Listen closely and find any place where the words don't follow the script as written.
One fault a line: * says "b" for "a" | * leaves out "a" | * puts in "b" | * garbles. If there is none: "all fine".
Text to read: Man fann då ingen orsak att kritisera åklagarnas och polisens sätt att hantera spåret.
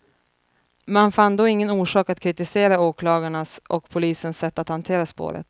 all fine